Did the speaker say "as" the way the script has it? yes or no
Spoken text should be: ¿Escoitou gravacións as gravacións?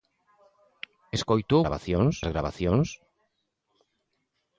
yes